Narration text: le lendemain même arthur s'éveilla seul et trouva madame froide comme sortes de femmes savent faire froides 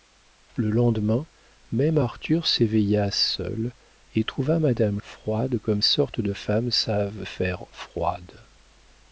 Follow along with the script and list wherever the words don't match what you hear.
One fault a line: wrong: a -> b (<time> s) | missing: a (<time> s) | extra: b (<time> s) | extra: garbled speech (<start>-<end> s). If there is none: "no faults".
no faults